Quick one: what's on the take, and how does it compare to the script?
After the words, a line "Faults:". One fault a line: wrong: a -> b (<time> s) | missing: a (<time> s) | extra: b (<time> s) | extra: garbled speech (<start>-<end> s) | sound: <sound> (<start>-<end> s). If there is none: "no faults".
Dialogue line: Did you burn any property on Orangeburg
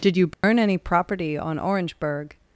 Did you burn any property on Orangeburg
Faults:
sound: dropout (0.3-0.4 s)